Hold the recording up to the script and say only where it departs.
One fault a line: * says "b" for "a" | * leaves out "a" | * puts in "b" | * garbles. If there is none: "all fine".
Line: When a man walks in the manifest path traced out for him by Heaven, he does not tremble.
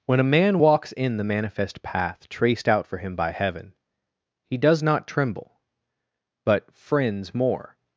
* puts in "But friends more"